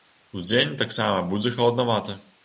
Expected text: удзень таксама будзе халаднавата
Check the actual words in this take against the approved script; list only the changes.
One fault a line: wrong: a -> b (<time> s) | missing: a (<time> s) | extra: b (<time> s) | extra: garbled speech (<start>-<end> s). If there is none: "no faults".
no faults